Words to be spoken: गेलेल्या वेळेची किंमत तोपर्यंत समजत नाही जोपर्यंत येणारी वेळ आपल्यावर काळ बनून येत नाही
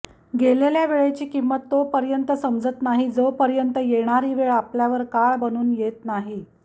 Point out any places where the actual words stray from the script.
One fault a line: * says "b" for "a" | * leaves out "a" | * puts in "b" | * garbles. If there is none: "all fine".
all fine